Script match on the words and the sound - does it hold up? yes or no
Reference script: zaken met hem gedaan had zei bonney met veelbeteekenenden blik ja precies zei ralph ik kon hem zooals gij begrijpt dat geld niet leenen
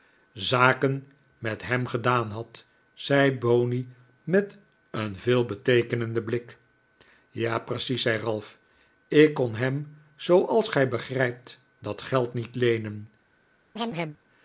no